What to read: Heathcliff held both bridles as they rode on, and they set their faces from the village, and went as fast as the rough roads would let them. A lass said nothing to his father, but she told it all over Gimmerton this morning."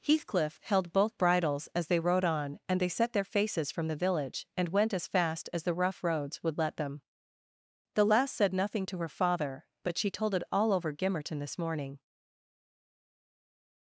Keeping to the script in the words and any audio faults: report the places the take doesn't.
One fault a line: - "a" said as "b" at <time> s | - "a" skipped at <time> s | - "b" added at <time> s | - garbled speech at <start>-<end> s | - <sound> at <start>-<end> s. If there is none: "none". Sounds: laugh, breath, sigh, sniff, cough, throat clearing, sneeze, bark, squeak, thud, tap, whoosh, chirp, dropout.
- "A" said as "The" at 7.9 s
- "his" said as "her" at 9.0 s